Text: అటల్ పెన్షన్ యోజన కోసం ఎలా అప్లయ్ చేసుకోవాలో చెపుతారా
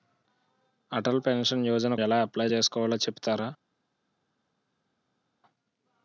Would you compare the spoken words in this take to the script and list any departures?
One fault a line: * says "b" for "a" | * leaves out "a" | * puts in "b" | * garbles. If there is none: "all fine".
* leaves out "కోసం"